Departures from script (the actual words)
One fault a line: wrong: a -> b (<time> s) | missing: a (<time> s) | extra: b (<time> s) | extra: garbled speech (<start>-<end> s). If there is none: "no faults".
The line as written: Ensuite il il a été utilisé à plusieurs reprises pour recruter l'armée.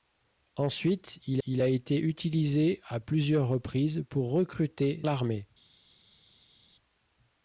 no faults